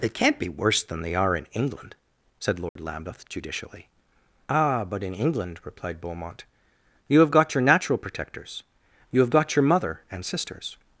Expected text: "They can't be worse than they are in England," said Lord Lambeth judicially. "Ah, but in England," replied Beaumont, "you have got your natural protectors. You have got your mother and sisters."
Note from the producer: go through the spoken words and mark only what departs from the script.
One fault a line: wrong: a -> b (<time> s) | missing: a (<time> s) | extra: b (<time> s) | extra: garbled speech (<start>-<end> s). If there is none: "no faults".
no faults